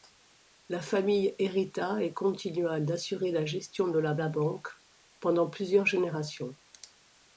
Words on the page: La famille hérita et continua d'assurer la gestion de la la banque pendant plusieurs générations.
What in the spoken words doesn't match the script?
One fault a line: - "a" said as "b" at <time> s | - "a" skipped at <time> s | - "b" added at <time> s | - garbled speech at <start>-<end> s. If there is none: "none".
none